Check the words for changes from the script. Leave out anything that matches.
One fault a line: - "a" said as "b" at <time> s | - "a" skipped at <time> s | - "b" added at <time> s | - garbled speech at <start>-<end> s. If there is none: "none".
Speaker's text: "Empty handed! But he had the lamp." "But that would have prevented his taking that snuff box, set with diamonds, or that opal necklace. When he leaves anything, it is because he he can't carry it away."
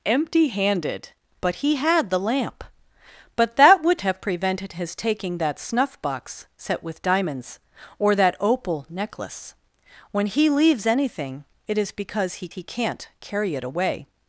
none